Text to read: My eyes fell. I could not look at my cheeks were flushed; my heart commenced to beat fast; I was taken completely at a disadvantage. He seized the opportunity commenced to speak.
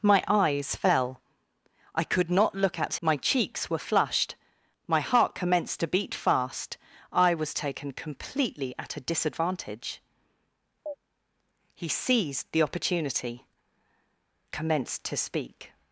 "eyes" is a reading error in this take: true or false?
false